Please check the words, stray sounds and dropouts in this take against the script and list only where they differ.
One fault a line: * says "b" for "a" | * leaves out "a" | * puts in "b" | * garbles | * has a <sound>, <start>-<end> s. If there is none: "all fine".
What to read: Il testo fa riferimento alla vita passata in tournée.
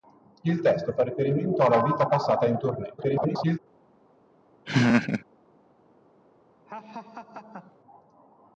* garbles
* has a laugh, 4.7-5.2 s
* has a laugh, 6.7-7.8 s